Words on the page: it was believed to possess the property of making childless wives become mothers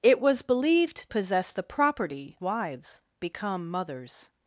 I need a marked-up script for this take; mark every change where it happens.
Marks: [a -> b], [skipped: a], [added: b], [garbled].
it was believed [skipped: to] possess the property [skipped: of making childless] wives become mothers